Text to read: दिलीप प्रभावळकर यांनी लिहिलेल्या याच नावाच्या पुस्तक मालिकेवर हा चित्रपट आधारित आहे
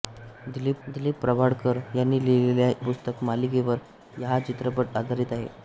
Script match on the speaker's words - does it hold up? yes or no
no